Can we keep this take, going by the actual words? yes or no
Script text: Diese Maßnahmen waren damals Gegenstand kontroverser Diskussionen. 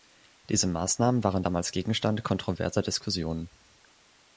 yes